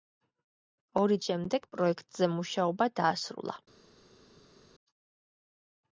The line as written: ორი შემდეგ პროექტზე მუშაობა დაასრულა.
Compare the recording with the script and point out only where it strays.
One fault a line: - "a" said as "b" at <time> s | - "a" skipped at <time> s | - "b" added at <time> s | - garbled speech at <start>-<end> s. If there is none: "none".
none